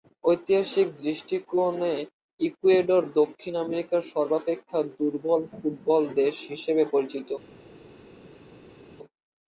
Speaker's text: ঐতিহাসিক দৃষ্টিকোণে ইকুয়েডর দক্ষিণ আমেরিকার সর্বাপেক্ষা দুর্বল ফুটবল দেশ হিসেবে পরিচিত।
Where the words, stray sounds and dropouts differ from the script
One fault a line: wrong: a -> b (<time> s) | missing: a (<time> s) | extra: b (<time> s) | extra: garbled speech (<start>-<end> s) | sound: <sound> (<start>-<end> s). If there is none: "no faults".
no faults